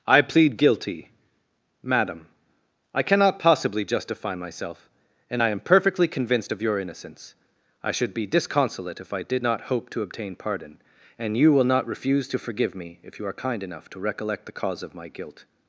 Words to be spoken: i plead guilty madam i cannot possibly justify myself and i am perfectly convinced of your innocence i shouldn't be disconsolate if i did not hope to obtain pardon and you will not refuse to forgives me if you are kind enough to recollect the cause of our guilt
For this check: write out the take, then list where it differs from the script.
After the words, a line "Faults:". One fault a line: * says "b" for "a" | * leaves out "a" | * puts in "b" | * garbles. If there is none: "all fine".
i plead guilty madam i cannot possibly justify myself and i am perfectly convinced of your innocence i should be disconsolate if i did not hope to obtain pardon and you will not refuse to forgive me if you are kind enough to recollect the cause of my guilt
Faults:
* says "should" for "shouldn't"
* says "forgive" for "forgives"
* says "my" for "our"